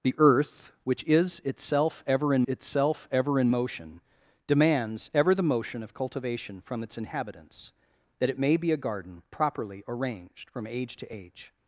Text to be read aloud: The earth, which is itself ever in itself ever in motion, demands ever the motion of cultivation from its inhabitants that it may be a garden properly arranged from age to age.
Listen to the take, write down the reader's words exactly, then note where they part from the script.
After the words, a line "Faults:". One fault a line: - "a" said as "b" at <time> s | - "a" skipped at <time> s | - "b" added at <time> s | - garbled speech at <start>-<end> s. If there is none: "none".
The earth, which is itself ever in itself ever in motion, demands ever the motion of cultivation from its inhabitants that it may be a garden properly arranged from age to age.
Faults:
none